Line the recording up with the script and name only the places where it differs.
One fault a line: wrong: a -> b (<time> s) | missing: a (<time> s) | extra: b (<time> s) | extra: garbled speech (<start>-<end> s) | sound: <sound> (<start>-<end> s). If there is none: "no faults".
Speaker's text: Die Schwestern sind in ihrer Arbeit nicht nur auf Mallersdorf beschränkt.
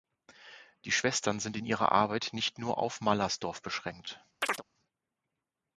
sound: chirp (4.4-4.6 s)